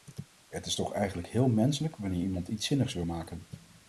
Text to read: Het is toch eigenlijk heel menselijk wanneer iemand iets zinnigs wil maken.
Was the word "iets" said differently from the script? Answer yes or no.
no